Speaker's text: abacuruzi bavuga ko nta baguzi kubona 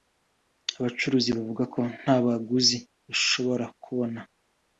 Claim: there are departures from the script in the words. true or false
true